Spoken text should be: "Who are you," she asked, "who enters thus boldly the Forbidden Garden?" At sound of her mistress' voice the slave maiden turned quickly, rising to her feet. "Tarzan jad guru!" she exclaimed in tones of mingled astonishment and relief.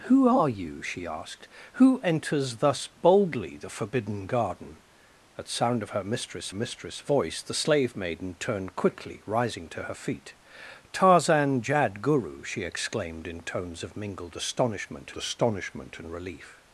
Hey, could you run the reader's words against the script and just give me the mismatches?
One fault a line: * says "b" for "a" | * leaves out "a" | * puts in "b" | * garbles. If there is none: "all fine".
* puts in "mistress"
* puts in "astonishment"